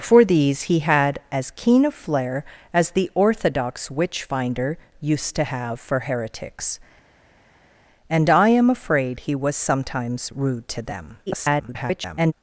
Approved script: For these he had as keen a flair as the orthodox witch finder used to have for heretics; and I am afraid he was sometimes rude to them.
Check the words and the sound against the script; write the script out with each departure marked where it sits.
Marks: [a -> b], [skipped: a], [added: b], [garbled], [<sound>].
For these he had as keen a flair as the orthodox witch finder used to have for heretics; and I am afraid he was sometimes rude to them. [garbled]